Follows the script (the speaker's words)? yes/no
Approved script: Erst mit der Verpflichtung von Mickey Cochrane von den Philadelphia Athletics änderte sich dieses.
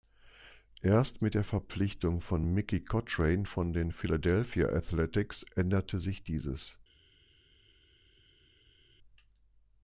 yes